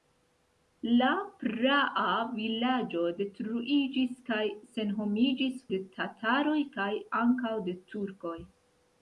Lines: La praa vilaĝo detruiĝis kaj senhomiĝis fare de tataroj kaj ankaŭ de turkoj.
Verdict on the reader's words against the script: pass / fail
fail